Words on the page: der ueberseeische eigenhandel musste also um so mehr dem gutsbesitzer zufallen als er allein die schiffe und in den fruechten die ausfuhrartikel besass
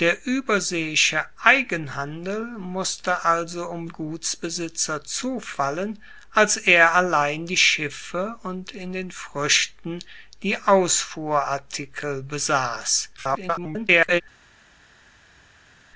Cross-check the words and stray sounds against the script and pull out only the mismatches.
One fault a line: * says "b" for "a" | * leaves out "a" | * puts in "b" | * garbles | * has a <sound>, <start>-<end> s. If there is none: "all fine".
* leaves out "so mehr dem"
* garbles